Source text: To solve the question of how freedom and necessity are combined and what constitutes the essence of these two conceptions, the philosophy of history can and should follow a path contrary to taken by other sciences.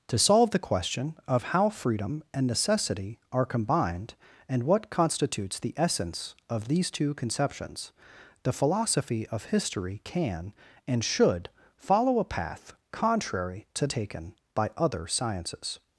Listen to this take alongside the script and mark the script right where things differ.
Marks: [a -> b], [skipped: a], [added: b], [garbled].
To solve the question of how freedom and necessity are combined and what constitutes the essence of these two conceptions, the philosophy of history can and should follow a path contrary to taken by other sciences.